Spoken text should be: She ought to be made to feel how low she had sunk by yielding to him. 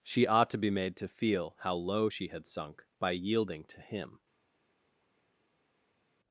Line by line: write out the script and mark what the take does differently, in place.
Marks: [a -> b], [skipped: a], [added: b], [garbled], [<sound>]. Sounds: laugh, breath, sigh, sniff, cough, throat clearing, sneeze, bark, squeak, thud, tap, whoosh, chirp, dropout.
She ought to be made to feel how low she had sunk by yielding to him.